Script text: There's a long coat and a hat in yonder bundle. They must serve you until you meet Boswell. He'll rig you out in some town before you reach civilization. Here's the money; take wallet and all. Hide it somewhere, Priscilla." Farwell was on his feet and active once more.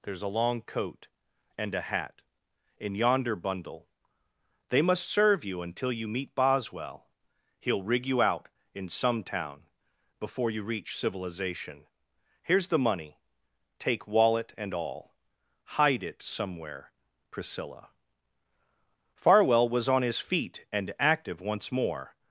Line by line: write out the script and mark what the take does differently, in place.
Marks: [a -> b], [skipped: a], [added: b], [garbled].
There's a long coat and a hat in yonder bundle. They must serve you until you meet Boswell. He'll rig you out in some town before you reach civilization. Here's the money; take wallet and all. Hide it somewhere, Priscilla." Farwell was on his feet and active once more.